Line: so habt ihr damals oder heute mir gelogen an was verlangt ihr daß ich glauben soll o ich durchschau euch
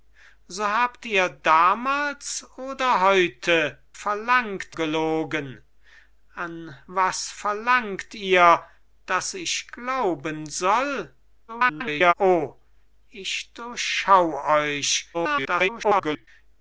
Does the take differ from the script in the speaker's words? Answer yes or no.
yes